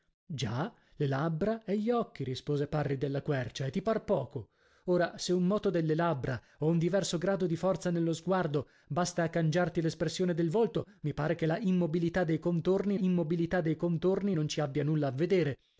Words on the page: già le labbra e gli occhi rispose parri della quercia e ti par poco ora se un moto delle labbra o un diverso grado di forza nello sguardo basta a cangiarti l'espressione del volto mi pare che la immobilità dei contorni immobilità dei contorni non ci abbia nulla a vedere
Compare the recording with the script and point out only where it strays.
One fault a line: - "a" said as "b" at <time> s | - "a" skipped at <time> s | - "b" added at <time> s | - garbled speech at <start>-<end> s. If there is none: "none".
none